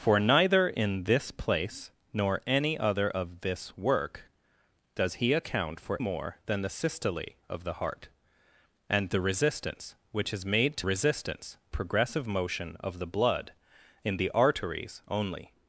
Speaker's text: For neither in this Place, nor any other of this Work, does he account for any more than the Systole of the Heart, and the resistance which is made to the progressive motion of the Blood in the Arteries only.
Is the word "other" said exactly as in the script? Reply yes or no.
yes